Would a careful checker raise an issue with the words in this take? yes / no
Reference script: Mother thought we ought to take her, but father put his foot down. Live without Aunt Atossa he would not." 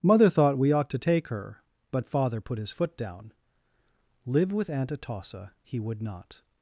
yes